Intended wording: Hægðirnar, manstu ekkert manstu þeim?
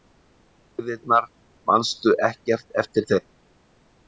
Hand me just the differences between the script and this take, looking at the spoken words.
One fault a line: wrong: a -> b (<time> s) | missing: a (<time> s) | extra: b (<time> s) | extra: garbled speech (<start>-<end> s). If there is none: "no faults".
wrong: manstu -> eftir (2.9 s)